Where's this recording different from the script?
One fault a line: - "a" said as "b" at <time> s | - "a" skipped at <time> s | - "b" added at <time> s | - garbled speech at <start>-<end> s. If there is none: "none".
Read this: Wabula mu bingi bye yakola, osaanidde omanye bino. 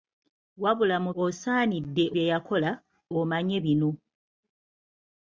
- "bingi" said as "osaanidde" at 1.2 s
- "osaanidde" skipped at 2.7 s